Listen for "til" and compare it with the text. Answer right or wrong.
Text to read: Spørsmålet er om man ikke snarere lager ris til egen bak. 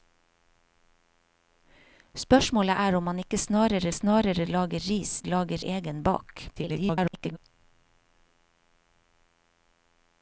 wrong